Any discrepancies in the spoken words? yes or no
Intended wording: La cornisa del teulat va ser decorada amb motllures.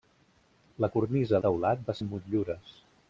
yes